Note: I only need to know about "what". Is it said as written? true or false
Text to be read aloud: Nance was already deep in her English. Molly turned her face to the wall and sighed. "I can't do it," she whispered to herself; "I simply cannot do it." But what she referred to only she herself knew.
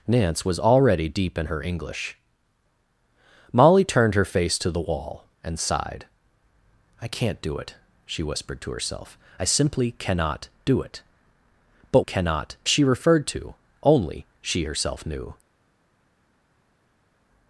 false